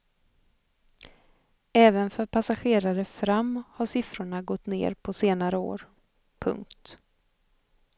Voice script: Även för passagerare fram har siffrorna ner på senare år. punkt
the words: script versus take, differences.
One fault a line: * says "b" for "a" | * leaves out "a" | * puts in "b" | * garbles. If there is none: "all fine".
* puts in "gått"